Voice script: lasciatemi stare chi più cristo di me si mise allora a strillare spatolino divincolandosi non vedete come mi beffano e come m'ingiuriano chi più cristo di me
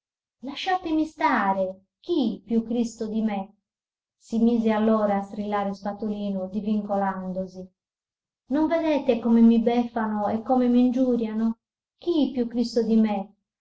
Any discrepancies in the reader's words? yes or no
no